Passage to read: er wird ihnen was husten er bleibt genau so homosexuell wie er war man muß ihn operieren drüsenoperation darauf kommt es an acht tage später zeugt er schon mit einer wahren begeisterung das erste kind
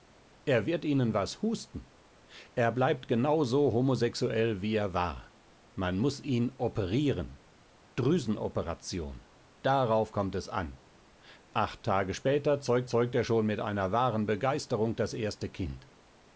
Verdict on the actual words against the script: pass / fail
fail